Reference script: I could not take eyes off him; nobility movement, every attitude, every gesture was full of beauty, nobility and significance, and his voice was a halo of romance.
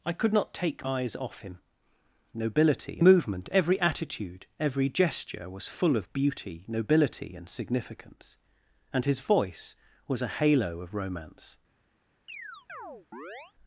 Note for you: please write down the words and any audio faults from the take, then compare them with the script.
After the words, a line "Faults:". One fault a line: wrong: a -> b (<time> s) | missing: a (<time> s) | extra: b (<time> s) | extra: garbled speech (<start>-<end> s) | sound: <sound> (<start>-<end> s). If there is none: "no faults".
I could not take eyes off him; nobility movement, every attitude, every gesture was full of beauty, nobility and significance, and his voice was a halo of romance.
Faults:
sound: chirp (12.3-13.5 s)